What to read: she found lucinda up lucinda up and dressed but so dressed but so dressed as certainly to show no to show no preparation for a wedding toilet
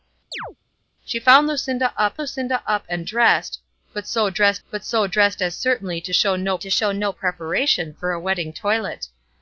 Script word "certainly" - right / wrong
right